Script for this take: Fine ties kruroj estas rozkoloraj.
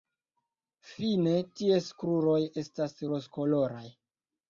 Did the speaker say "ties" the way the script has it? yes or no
yes